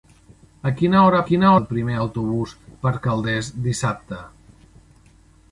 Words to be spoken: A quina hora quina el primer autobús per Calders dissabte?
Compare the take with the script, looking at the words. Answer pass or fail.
pass